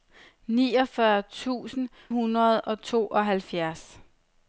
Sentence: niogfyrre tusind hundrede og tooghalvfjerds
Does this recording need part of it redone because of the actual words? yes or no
no